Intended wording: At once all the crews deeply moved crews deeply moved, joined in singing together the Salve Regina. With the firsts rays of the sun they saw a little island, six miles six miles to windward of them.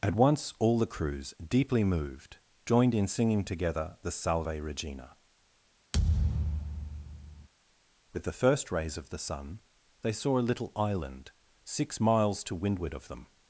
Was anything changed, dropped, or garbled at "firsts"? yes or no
yes